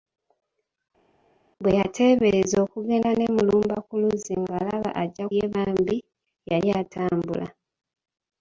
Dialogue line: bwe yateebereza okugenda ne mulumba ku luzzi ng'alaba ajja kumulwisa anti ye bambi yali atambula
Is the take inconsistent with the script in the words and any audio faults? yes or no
yes